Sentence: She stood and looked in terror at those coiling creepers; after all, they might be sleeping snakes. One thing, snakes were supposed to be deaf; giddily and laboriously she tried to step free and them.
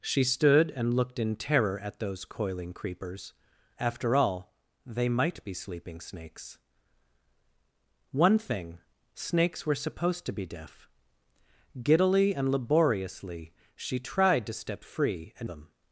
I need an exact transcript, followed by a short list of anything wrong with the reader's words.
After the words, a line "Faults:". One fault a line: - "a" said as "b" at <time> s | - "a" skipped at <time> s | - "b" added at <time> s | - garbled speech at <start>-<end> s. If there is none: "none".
She stood and looked in terror at those coiling creepers; after all, they might be sleeping snakes. One thing, snakes were supposed to be deaf; giddily and laboriously she tried to step free and them.
Faults:
none